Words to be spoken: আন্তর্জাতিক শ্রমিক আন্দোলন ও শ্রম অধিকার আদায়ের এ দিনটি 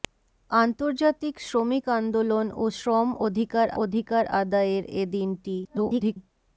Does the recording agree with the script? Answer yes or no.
no